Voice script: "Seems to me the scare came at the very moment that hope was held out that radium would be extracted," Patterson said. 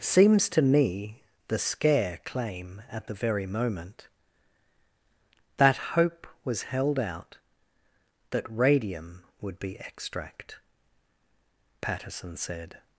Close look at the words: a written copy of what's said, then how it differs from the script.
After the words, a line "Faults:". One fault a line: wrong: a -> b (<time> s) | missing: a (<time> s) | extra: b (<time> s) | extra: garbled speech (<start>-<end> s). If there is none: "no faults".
"Seems to me the scare claim at the very moment that hope was held out that radium would be extract," Patterson said.
Faults:
wrong: came -> claim (2.2 s)
wrong: extracted -> extract (9.8 s)